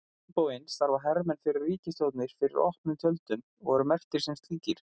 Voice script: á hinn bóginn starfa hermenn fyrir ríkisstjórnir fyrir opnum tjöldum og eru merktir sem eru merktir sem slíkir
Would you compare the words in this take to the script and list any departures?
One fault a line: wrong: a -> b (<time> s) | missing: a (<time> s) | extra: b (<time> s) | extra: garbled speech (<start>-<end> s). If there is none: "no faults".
missing: eru merktir sem (4.4 s)